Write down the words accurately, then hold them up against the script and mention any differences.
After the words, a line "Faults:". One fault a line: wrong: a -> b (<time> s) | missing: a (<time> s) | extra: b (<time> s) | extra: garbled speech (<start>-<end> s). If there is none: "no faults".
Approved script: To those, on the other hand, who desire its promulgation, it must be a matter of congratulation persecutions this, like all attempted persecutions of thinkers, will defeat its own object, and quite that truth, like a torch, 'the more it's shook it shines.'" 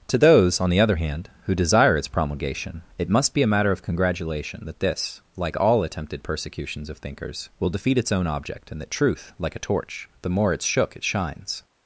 To those, on the other hand, who desire its promulgation, it must be a matter of congratulation that this, like all attempted persecutions of thinkers, will defeat its own object, and that truth, like a torch, 'the more it's shook it shines.'"
Faults:
wrong: persecutions -> that (4.7 s)
missing: quite (8.8 s)